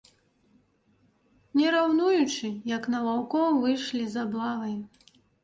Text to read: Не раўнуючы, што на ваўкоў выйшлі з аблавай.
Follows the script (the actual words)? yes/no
no